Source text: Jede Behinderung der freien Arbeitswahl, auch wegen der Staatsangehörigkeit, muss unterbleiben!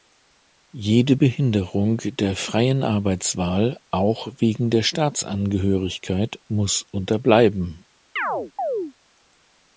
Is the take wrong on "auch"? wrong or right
right